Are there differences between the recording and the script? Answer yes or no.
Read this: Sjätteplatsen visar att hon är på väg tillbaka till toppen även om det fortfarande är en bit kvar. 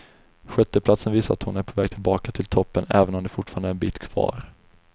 no